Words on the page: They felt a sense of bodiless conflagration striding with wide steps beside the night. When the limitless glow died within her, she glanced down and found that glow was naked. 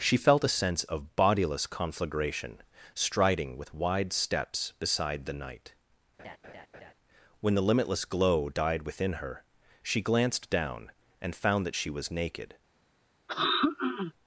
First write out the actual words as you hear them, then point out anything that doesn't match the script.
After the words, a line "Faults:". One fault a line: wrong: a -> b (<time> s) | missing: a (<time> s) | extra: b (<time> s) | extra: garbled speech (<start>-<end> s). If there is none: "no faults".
She felt a sense of bodiless conflagration striding with wide steps beside the night. When the limitless glow died within her, she glanced down and found that she was naked.
Faults:
wrong: They -> She (0.0 s)
wrong: glow -> she (11.7 s)